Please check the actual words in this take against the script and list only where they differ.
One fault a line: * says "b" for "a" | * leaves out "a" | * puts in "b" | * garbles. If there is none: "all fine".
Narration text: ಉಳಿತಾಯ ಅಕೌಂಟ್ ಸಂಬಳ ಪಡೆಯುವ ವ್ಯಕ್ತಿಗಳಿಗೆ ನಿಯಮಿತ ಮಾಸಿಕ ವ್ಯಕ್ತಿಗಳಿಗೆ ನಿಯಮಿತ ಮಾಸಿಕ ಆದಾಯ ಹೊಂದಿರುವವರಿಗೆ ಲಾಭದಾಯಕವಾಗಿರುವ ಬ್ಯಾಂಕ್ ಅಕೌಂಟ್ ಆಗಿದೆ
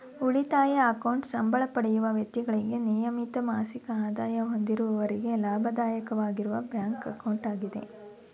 * leaves out "ವ್ಯಕ್ತಿಗಳಿಗೆ ನಿಯಮಿತ ಮಾಸಿಕ"